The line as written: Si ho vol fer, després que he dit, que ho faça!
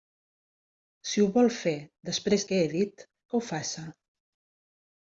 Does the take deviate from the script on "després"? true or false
false